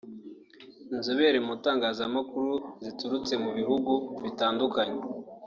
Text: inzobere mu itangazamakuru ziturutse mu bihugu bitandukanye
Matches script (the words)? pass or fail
pass